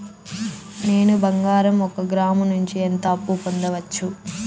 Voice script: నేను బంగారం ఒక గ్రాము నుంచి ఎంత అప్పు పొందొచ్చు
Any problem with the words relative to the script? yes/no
no